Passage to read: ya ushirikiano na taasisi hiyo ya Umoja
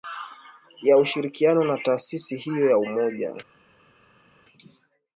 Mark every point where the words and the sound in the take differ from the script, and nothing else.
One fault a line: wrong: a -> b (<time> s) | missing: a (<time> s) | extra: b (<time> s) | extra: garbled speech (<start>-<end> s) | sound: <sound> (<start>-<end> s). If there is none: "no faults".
no faults